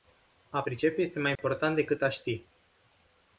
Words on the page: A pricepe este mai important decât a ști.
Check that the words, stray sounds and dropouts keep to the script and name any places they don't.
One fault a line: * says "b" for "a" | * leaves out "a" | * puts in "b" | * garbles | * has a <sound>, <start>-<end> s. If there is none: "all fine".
* has a dropout, 1.4-1.4 s